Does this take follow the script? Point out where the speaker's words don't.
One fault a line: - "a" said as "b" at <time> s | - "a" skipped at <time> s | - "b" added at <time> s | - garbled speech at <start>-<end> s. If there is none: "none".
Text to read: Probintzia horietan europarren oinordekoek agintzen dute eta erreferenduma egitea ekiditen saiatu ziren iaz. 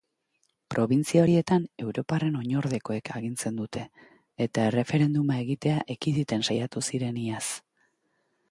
none